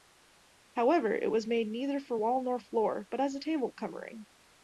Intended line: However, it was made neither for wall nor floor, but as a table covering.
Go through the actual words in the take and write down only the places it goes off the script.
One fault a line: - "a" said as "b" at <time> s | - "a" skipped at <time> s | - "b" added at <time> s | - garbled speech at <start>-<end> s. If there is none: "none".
none